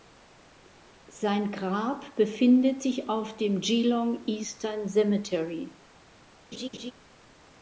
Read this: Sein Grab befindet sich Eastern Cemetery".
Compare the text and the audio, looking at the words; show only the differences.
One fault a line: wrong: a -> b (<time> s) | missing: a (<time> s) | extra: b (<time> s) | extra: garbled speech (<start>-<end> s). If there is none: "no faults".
extra: auf dem Geelong (3.1 s)